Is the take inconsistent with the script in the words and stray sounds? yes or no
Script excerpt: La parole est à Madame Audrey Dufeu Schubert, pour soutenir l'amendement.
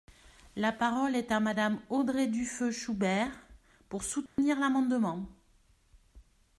yes